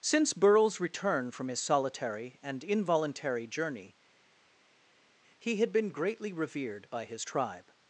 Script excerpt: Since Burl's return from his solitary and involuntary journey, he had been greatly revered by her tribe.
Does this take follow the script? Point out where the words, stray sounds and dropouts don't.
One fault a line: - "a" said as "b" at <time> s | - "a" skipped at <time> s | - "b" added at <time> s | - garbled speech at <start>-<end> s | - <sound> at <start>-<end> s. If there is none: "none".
- "her" said as "his" at 7.1 s